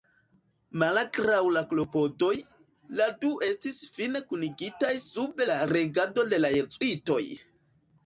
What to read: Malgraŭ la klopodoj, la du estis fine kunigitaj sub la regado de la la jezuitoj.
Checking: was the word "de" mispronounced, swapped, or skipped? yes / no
no